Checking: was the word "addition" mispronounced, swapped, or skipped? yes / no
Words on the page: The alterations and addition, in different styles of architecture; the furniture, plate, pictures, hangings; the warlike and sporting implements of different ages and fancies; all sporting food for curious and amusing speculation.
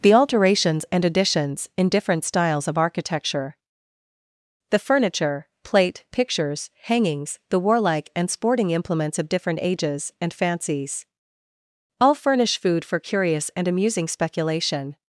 yes